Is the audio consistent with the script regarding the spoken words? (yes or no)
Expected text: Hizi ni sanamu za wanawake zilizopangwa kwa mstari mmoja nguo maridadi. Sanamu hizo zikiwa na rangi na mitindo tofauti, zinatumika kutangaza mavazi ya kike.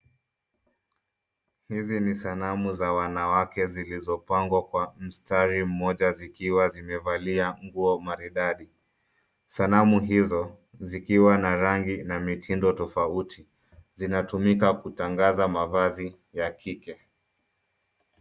no